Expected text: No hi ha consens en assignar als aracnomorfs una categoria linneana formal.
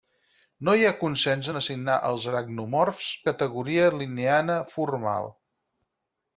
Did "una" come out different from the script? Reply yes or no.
yes